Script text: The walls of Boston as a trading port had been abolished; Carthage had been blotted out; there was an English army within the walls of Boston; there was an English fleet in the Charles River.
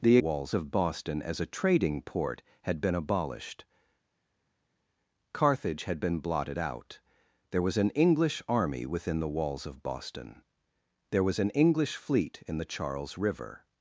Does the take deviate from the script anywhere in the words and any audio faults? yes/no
no